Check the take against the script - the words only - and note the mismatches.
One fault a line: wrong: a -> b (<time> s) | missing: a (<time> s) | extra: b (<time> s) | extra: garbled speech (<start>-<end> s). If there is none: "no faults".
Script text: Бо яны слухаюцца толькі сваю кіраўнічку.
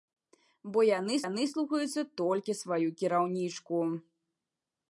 extra: яны (1.3 s)